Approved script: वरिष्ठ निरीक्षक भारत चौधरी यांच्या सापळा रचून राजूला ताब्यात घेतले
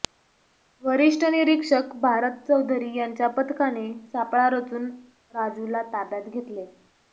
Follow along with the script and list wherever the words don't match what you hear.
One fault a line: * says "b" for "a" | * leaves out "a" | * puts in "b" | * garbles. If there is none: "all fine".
* puts in "पथकाने"